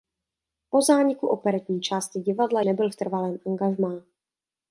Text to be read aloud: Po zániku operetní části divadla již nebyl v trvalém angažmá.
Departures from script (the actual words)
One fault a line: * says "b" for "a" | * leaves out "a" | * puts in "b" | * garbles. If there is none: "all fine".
* leaves out "již"